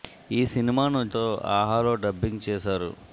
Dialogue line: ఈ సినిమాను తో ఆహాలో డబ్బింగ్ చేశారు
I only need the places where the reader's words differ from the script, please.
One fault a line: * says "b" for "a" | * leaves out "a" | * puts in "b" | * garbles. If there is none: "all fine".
all fine